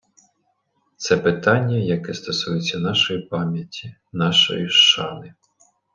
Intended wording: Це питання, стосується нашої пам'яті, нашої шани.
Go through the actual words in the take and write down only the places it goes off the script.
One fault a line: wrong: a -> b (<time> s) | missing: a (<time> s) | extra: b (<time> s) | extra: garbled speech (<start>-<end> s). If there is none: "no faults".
extra: яке (1.8 s)